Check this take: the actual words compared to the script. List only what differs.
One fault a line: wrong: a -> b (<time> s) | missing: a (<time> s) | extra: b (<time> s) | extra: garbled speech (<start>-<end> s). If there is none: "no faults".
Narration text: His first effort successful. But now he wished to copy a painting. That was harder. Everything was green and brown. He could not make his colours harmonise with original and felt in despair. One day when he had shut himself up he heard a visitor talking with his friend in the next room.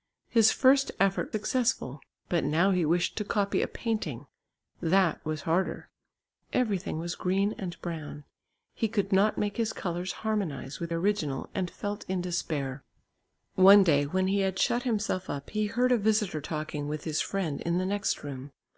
no faults